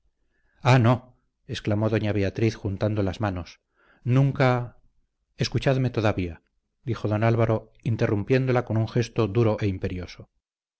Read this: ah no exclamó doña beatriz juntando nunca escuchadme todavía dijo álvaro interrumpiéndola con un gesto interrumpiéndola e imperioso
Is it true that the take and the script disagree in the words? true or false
true